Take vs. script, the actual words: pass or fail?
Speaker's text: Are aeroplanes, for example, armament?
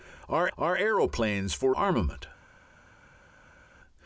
fail